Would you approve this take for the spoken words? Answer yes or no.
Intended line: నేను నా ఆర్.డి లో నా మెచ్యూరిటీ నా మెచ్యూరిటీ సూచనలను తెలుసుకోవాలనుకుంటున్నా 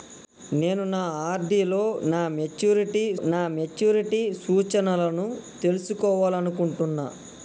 yes